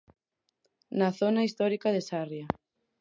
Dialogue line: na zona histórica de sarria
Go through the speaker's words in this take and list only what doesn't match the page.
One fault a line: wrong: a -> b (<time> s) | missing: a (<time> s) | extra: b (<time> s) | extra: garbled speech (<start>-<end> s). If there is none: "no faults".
no faults